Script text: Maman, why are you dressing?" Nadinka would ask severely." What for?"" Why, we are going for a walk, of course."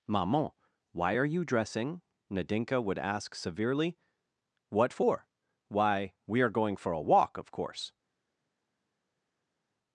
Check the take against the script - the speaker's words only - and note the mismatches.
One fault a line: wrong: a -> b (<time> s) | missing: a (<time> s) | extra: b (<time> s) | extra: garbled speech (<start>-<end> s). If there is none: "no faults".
no faults